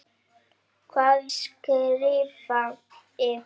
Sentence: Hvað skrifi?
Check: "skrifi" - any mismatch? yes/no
no